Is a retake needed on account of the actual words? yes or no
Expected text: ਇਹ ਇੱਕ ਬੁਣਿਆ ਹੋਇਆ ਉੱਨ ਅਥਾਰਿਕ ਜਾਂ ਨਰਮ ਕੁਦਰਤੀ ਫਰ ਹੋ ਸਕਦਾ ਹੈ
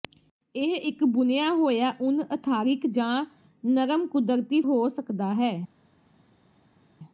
yes